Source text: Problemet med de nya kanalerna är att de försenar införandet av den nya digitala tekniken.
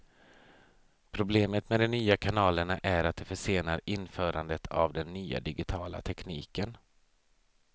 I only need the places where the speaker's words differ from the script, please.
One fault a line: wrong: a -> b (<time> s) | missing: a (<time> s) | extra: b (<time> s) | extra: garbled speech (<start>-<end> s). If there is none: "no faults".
no faults